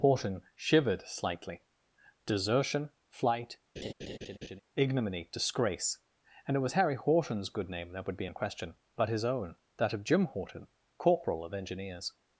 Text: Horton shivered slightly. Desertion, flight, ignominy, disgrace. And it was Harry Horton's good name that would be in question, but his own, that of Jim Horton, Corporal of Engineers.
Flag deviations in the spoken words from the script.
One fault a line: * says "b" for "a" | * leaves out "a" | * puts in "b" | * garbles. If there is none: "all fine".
all fine